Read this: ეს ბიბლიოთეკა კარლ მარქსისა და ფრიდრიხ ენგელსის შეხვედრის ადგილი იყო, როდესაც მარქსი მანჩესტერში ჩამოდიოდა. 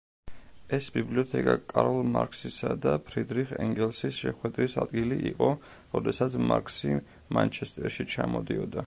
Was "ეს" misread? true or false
false